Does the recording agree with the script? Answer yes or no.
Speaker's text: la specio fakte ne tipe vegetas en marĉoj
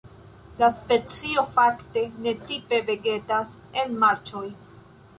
yes